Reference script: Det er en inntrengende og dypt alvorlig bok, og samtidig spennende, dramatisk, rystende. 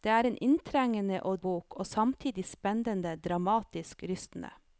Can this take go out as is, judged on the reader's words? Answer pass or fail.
fail